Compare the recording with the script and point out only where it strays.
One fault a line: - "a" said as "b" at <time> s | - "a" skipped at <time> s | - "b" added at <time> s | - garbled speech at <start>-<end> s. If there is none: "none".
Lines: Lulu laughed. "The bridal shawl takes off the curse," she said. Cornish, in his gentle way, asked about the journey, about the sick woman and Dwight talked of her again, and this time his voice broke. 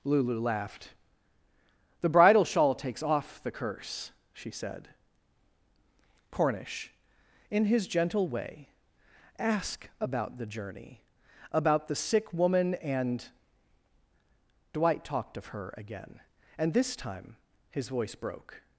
- "asked" said as "ask" at 9.4 s